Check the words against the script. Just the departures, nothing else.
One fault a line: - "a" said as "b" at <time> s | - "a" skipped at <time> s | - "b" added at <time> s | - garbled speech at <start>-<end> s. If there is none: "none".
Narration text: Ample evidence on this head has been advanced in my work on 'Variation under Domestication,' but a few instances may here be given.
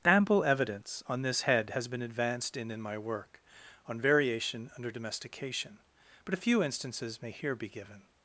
- "in" added at 2.7 s